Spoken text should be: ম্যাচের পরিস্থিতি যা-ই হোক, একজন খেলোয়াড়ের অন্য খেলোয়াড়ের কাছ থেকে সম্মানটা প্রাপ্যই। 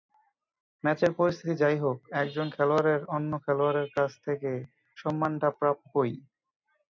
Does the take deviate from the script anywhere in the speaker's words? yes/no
no